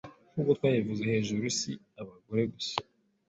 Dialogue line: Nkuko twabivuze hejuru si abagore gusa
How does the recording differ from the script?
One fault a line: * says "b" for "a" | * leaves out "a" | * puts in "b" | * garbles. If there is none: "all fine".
all fine